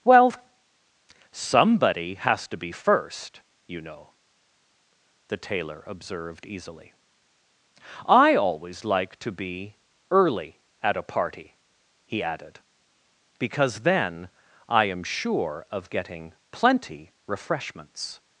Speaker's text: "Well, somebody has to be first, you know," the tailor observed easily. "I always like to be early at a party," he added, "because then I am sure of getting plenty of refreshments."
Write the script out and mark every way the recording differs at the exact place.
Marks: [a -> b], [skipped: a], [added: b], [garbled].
"Well, somebody has to be first, you know," the tailor observed easily. "I always like to be early at a party," he added, "because then I am sure of getting plenty [skipped: of] refreshments."